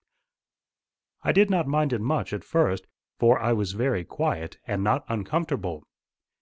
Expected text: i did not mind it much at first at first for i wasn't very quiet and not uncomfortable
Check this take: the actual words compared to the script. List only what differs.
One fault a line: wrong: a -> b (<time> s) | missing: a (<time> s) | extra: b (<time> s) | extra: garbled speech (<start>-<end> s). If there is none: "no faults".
missing: at first (2.9 s)
wrong: wasn't -> was (3.5 s)